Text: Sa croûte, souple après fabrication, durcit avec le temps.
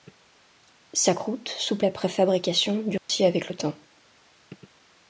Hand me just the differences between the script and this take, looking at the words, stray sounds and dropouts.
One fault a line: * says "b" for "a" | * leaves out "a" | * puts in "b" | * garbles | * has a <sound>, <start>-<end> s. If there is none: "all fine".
* has a dropout, 3.0-3.1 s